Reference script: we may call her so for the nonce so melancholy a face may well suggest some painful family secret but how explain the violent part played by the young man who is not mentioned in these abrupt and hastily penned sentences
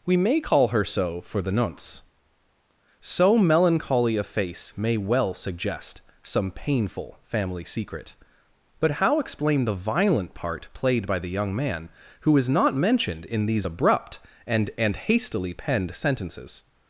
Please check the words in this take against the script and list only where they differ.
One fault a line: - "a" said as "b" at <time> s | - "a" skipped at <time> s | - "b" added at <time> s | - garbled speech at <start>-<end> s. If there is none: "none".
- "and" added at 14.8 s